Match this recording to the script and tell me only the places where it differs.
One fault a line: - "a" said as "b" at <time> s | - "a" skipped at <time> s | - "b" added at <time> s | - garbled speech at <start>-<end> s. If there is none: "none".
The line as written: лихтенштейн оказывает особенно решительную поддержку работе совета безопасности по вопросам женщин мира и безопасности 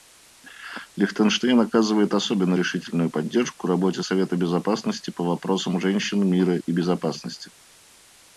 none